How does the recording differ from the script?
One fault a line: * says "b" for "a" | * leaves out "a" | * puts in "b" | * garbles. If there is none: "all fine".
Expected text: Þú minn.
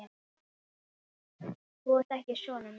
* puts in "ert ekki sonur"